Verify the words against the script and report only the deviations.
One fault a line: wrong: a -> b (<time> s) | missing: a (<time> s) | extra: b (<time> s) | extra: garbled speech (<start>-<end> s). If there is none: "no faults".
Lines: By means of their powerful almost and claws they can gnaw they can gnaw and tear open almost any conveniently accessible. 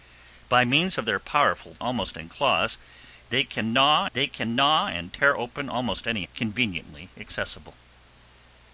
no faults